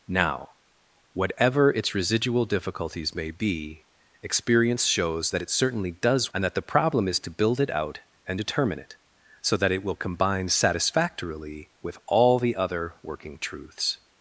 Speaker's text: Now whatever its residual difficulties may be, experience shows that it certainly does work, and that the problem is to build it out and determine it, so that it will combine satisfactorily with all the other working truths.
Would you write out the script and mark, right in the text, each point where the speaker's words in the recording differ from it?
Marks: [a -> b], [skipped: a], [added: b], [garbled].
Now whatever its residual difficulties may be, experience shows that it certainly does [skipped: work,] and that the problem is to build it out and determine it, so that it will combine satisfactorily with all the other working truths.